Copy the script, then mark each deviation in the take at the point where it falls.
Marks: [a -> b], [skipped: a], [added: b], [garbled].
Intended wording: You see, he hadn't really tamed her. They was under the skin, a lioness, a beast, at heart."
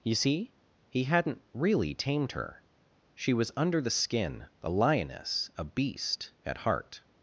You see, he hadn't really tamed her. [They -> She] was under the skin, a lioness, a beast, at heart."